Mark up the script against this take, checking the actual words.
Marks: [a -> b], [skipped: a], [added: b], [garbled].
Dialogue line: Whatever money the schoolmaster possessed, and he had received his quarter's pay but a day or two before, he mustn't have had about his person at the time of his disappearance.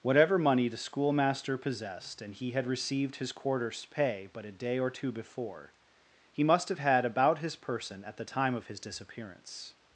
Whatever money the schoolmaster possessed, and he had received his quarter's pay but a day or two before, he [mustn't -> must] have had about his person at the time of his disappearance.